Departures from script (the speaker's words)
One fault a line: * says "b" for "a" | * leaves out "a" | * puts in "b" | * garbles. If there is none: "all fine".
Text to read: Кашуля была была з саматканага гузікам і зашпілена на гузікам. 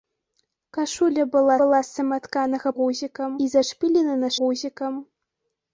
all fine